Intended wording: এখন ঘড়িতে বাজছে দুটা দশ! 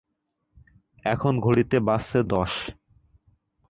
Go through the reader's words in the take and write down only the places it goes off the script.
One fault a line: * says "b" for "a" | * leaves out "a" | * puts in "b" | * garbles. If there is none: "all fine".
* leaves out "দুটা"